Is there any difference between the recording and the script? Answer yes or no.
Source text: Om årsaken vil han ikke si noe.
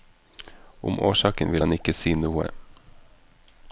no